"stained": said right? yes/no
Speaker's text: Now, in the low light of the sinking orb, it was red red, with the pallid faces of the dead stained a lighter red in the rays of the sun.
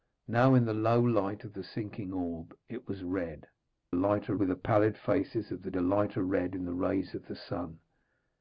no